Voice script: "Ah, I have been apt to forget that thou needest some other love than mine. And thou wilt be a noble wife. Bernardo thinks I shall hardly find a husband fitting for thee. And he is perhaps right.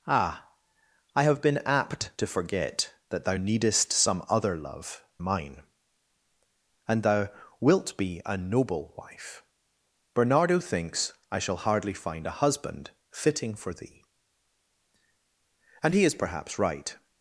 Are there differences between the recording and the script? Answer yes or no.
yes